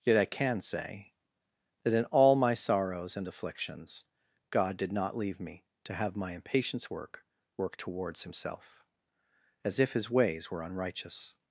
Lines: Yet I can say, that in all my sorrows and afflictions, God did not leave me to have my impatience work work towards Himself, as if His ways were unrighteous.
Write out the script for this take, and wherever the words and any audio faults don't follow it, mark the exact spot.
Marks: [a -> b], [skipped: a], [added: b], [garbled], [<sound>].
Yet I can say, that in all my sorrows and afflictions, God did not leave me to have my impatience work work towards Himself, as if His ways were unrighteous.